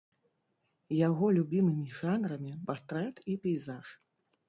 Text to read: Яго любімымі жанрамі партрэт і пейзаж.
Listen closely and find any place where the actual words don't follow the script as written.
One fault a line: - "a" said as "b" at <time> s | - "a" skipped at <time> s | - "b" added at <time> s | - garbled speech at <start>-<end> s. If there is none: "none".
none